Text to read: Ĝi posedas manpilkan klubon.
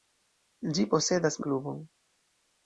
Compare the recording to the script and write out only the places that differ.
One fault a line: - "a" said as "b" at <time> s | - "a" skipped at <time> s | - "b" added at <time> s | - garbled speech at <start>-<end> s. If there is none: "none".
- "manpilkan" skipped at 1.4 s